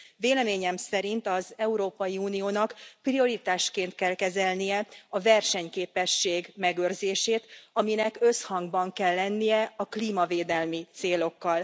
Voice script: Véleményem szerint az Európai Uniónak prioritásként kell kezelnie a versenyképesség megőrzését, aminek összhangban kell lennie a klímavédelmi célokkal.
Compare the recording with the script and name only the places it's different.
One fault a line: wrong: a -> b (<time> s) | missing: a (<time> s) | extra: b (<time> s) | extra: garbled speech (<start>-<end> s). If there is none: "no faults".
no faults